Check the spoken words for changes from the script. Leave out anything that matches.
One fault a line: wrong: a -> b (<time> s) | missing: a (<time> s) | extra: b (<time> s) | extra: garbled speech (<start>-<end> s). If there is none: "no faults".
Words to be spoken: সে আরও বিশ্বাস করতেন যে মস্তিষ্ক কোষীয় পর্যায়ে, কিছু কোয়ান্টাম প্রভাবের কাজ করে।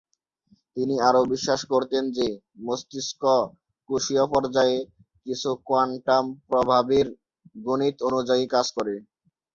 wrong: সে -> তিনি (0.8 s)
extra: গণিত অনুযায়ী (7.6 s)